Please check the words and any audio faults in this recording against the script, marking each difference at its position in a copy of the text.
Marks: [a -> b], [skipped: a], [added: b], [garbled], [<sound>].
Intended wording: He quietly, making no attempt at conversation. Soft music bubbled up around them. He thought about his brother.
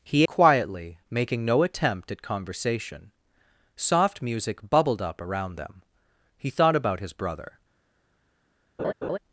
He quietly, making no attempt at conversation. Soft music bubbled up around them. He thought about his brother. [laugh]